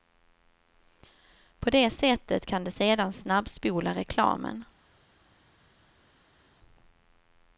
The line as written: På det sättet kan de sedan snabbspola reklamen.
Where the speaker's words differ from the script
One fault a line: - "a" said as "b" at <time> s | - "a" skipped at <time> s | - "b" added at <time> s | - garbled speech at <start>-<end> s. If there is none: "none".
none